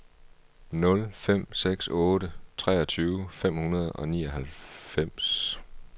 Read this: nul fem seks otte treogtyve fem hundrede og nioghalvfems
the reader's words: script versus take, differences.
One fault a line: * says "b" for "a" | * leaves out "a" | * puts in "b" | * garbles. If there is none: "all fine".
all fine